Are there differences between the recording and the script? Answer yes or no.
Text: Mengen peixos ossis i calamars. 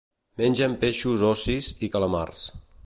no